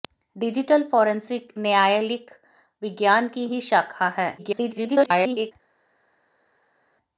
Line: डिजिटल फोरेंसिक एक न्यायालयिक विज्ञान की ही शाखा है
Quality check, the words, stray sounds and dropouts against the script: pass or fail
fail